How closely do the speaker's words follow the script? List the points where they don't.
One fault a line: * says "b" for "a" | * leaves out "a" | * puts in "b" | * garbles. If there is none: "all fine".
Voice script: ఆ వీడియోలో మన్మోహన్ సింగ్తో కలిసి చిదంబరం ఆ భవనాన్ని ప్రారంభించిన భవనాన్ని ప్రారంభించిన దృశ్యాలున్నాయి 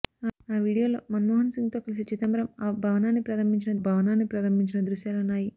all fine